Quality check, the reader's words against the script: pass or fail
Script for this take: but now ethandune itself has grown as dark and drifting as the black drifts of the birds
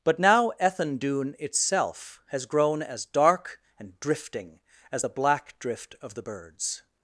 fail